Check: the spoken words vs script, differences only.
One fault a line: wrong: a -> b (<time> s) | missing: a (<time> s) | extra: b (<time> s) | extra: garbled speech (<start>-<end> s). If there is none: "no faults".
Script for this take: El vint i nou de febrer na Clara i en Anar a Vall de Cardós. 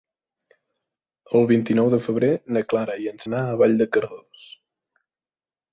no faults